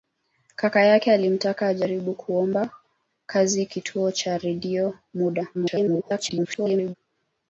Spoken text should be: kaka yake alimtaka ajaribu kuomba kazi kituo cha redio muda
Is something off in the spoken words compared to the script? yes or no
yes